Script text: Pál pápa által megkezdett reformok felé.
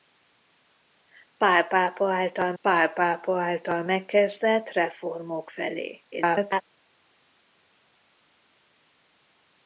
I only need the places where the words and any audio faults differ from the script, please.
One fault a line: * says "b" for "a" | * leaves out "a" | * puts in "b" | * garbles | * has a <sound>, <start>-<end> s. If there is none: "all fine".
* puts in "pál pápa által"
* garbles